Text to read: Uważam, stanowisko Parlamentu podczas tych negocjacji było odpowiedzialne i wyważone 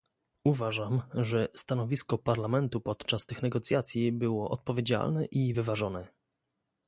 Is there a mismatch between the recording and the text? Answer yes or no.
yes